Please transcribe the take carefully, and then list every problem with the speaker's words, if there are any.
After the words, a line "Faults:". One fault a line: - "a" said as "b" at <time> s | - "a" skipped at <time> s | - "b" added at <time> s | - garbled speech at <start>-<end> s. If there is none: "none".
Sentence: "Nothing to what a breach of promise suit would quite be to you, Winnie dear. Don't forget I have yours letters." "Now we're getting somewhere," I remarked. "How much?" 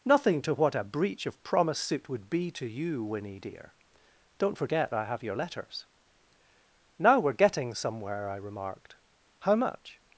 "Nothing to what a breach of promise suit would be to you, Winnie dear. Don't forget I have your letters." "Now we're getting somewhere," I remarked. "How much?"
Faults:
- "quite" skipped at 2.3 s
- "yours" said as "your" at 5.2 s